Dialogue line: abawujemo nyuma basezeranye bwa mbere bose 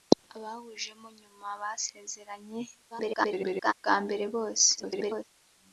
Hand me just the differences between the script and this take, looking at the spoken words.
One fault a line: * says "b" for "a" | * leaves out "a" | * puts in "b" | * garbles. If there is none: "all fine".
* garbles
* garbles